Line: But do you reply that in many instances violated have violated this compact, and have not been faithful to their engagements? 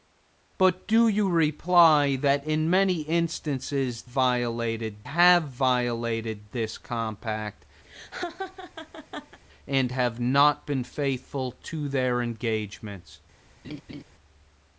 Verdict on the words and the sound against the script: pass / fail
fail